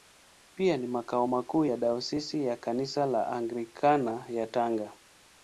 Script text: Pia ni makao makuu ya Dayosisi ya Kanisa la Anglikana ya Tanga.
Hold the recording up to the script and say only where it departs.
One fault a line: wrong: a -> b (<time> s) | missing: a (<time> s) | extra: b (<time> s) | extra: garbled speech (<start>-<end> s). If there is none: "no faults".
no faults